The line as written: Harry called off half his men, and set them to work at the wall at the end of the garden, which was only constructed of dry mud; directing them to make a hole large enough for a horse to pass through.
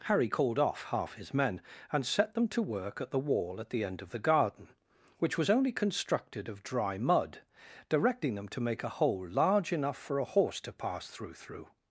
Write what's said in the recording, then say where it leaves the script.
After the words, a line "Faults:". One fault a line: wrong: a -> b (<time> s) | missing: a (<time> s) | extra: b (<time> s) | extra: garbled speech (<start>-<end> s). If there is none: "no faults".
Harry called off half his men, and set them to work at the wall at the end of the garden, which was only constructed of dry mud; directing them to make a hole large enough for a horse to pass through through.
Faults:
extra: through (11.3 s)